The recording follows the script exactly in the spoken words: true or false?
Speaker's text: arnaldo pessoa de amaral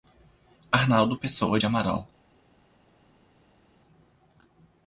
true